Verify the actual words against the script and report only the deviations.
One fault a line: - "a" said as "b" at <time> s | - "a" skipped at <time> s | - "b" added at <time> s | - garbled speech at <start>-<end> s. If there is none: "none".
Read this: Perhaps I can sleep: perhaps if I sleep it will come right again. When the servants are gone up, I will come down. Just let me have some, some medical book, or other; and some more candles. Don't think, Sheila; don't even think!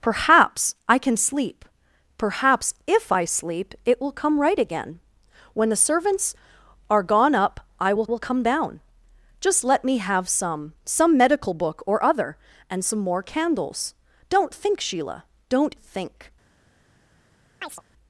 - "will" added at 8.1 s
- "even" skipped at 15.7 s